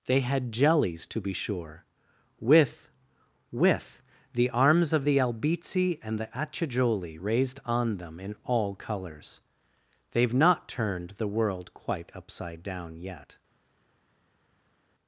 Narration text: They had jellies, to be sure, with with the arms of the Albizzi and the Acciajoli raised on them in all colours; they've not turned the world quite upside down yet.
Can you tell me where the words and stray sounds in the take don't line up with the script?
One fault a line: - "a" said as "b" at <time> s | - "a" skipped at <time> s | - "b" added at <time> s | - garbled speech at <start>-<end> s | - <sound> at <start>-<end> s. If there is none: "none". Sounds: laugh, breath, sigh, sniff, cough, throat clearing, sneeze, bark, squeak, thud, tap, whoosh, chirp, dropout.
none